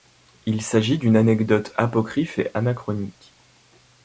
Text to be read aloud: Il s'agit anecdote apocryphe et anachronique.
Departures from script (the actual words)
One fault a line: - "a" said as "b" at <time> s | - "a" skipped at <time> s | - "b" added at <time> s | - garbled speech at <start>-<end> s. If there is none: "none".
- "d'une" added at 1.0 s